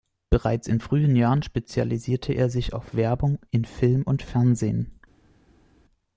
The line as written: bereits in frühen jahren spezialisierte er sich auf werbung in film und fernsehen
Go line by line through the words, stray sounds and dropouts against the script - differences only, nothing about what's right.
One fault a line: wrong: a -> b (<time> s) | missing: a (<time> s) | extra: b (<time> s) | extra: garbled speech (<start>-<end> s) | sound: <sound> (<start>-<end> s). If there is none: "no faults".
no faults